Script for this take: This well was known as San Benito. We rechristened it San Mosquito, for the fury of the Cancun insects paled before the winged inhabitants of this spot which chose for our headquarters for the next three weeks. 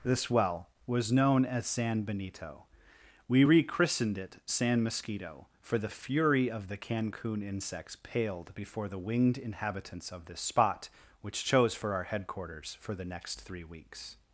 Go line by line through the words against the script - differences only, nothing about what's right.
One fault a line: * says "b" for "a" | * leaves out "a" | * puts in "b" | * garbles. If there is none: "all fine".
all fine